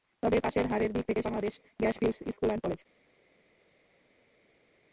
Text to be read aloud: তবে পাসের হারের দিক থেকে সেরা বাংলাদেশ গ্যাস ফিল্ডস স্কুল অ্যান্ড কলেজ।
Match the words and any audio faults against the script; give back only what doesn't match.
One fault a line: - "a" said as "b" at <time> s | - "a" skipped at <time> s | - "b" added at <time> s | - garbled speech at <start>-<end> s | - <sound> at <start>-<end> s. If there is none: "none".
- "সেরা" skipped at 1.2 s